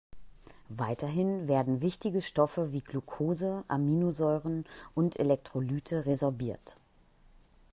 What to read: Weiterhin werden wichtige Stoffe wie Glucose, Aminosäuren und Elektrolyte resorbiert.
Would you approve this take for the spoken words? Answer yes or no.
yes